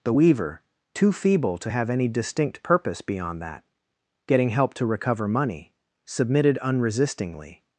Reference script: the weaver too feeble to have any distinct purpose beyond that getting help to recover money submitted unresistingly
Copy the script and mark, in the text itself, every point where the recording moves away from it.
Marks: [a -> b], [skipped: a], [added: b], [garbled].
the weaver too feeble to have any distinct purpose beyond that getting help to recover money submitted unresistingly